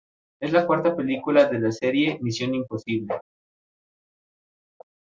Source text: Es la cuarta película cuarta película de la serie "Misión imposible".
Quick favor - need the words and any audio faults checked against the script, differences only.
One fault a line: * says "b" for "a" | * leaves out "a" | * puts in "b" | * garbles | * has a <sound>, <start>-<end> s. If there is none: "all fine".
* leaves out "cuarta película"